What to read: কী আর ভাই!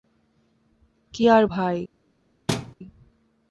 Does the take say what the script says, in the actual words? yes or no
yes